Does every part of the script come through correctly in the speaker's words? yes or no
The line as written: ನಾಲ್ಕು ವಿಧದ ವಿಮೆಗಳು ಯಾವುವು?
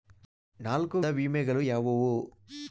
no